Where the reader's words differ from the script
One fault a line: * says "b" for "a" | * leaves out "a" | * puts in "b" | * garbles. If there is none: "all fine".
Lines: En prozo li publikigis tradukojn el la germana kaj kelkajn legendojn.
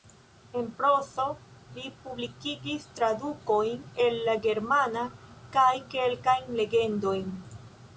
all fine